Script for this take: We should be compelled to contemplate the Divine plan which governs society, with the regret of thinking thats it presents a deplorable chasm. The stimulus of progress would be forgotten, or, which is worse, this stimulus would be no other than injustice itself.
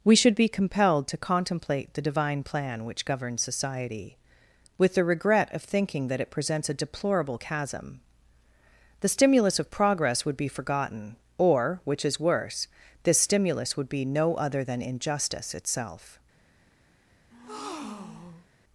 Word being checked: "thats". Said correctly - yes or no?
no